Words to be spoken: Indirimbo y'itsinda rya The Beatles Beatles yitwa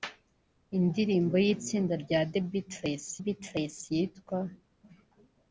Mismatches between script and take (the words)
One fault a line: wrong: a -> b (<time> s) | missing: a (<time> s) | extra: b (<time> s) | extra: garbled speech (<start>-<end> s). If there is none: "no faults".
no faults